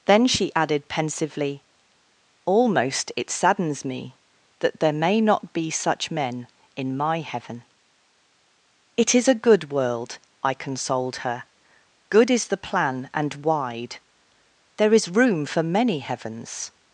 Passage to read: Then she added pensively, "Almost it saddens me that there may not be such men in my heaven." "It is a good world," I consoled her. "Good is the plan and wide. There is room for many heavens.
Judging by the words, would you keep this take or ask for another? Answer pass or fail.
pass